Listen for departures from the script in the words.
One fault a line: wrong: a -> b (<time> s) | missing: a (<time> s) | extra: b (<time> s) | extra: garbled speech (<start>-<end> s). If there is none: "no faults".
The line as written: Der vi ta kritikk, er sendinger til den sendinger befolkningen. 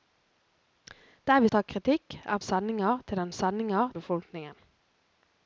no faults